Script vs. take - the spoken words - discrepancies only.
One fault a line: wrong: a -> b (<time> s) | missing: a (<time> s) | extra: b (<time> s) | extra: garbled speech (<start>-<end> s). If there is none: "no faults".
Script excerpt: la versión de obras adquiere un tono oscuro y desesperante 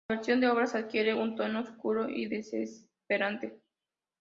no faults